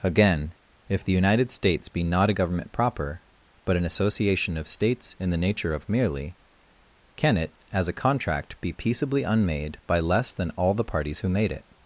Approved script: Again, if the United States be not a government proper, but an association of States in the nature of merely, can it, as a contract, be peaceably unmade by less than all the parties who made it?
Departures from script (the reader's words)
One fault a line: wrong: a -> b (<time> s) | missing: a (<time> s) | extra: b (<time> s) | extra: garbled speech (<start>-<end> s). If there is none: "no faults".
no faults